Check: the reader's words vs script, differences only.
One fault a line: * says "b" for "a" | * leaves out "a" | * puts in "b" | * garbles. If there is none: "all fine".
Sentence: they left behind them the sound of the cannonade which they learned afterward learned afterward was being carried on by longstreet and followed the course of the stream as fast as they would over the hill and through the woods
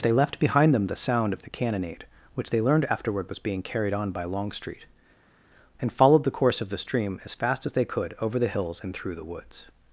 * leaves out "learned afterward"
* says "could" for "would"
* says "hills" for "hill"